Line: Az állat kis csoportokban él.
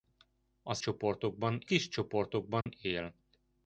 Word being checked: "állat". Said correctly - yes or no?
no